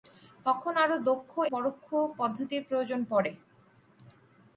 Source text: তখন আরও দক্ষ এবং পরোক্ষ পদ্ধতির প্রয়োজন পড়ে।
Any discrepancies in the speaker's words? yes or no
yes